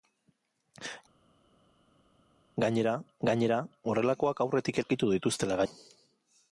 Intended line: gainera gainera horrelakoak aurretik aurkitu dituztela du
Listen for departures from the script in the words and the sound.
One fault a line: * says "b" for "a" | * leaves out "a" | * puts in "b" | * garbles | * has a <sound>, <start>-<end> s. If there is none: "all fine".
all fine